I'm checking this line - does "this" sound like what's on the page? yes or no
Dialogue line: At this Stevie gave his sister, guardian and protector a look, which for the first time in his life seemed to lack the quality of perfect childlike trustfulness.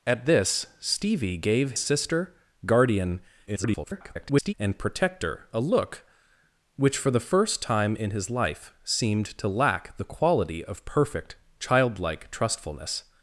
yes